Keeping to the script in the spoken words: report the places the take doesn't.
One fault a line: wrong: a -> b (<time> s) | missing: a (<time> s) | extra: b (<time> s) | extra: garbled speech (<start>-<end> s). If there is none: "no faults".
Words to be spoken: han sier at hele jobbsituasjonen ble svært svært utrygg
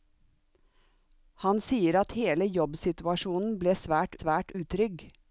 no faults